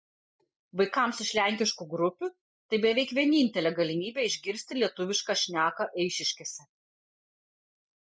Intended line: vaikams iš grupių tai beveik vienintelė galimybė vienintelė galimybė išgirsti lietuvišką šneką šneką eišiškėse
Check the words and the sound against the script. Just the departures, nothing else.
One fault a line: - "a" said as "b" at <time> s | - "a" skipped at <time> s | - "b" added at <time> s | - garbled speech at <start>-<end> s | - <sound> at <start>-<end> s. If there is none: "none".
- "lenkiškų" added at 1.4 s
- "vienintelė galimybė" skipped at 4.3 s
- "šneką" skipped at 5.9 s